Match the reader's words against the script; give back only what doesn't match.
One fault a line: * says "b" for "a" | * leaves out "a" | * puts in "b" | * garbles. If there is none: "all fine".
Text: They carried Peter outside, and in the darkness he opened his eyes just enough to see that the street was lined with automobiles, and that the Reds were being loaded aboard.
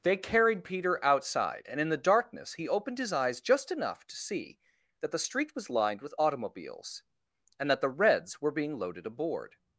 all fine